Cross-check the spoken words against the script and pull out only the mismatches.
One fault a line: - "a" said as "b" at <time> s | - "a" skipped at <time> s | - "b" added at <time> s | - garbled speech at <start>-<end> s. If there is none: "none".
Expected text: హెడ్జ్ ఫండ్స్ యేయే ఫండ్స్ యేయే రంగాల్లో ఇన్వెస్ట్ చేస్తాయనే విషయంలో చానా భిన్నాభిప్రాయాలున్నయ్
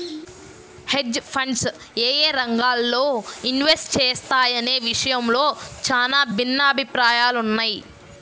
- "ఫండ్స్ యేయే" skipped at 2.3 s